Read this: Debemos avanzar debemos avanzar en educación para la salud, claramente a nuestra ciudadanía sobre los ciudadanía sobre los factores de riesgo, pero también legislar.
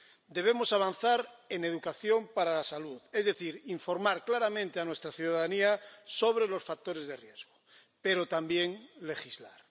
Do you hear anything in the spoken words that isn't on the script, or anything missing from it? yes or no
yes